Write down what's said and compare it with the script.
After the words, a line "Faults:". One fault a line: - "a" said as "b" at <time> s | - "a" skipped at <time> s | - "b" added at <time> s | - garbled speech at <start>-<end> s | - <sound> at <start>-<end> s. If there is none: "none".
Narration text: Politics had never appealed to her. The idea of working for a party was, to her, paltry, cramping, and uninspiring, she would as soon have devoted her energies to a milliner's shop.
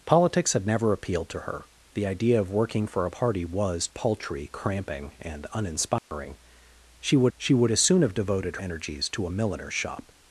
Politics had never appealed to her. The idea of working for a party was, paltry, cramping, and uninspiring, she would she would as soon have devoted energies to a milliner's shop.
Faults:
- "to her" skipped at 3.9 s
- dropout at 6.0-6.1 s
- "she would" added at 7.4 s
- "her" skipped at 8.6 s